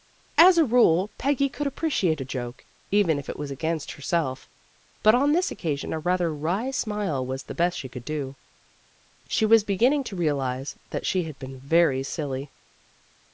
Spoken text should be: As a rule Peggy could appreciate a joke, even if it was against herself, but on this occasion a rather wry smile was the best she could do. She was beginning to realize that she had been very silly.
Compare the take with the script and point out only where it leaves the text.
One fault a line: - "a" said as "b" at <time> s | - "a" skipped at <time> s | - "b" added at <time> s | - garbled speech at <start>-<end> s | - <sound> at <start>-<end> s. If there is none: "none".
none